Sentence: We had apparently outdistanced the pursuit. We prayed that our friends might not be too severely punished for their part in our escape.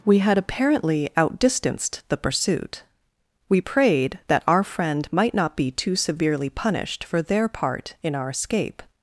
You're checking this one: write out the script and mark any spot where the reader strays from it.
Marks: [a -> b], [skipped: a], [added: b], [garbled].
We had apparently outdistanced the pursuit. We prayed that our [friends -> friend] might not be too severely punished for their part in our escape.